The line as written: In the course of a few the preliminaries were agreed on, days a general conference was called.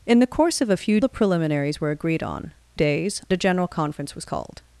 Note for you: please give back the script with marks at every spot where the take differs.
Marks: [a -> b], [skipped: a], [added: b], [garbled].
In the course of a few the preliminaries were agreed on, days a general conference was called.